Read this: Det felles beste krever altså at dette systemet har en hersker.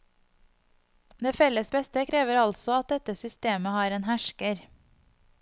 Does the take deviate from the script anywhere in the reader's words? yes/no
no